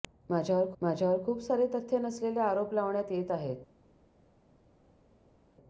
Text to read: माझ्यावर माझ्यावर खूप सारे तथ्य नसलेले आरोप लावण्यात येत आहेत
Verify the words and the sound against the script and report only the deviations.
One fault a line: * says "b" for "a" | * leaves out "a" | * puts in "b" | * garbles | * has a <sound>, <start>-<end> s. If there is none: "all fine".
all fine